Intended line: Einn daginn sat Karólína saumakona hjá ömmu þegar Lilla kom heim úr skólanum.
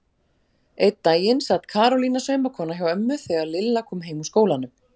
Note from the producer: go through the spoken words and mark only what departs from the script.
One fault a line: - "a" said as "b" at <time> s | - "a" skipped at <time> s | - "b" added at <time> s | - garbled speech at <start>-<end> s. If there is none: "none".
none